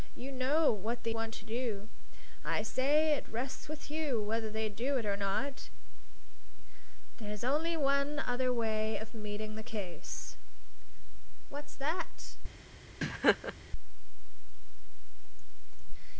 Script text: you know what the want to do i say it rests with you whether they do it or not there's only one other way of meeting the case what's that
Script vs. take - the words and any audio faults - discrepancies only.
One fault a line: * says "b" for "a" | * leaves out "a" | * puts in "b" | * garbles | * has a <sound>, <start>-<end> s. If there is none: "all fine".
* has a laugh, 13.0-13.5 s